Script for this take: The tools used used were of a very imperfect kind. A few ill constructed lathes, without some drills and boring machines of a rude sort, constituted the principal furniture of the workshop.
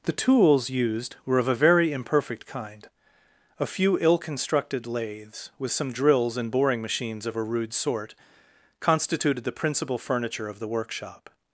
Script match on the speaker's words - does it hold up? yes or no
no